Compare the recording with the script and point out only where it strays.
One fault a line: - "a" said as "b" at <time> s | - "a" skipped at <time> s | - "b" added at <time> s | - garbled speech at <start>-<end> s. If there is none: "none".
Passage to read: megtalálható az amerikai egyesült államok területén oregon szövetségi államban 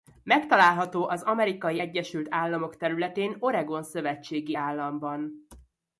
none